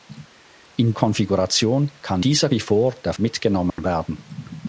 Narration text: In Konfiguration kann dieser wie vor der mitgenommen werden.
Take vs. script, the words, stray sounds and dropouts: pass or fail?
fail